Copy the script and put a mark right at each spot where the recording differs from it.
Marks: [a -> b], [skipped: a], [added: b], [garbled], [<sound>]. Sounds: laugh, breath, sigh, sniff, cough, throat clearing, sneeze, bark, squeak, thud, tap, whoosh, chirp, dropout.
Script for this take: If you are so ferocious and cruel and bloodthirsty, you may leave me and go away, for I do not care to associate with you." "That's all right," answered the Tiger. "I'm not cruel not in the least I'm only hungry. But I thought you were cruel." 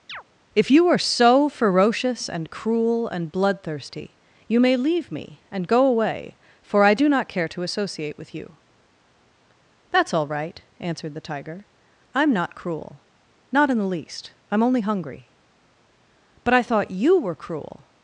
[chirp] If you are so ferocious and cruel and bloodthirsty, you may leave me and go away, for I do not care to associate with you." "That's all right," answered the Tiger. "I'm not cruel not in the least I'm only hungry. But I thought you were cruel."